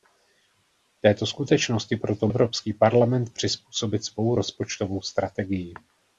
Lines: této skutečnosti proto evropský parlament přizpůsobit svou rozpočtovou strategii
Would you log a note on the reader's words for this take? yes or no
no